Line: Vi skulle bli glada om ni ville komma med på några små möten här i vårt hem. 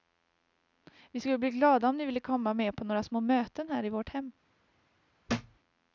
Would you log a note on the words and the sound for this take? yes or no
yes